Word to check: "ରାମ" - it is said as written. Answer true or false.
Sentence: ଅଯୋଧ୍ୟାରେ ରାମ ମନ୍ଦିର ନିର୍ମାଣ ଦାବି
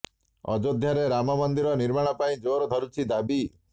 true